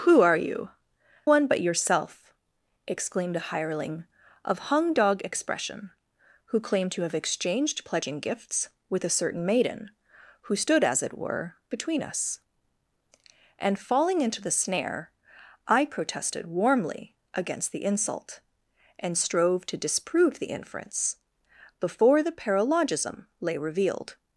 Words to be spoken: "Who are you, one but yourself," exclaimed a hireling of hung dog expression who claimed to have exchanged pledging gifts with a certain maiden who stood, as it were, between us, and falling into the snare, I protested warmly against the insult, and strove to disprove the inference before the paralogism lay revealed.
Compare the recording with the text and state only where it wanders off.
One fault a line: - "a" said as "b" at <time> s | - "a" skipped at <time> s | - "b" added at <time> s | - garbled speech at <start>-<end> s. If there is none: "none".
none